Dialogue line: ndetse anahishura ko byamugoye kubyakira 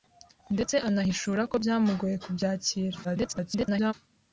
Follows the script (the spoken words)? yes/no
no